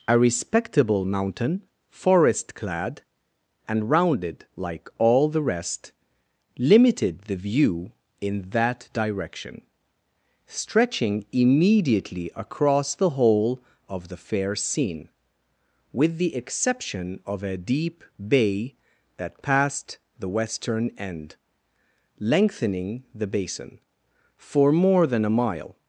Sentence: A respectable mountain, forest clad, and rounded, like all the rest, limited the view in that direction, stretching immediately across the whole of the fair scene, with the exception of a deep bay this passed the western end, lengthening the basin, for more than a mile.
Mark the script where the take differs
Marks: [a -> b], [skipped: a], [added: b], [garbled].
A respectable mountain, forest clad, and rounded, like all the rest, limited the view in that direction, stretching immediately across the whole of the fair scene, with the exception of a deep bay [this -> that] passed the western end, lengthening the basin, for more than a mile.